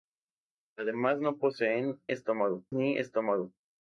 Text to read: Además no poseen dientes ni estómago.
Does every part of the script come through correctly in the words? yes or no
no